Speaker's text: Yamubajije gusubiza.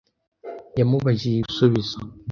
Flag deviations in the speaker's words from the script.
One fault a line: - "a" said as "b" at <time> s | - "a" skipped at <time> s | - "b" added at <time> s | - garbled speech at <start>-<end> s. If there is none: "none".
none